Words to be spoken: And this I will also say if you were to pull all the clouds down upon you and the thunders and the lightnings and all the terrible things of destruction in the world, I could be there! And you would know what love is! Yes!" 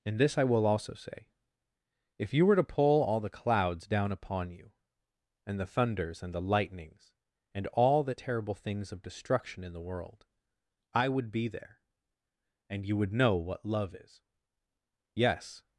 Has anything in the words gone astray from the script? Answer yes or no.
yes